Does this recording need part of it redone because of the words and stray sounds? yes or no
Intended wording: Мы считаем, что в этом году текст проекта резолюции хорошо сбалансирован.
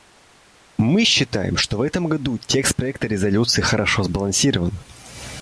no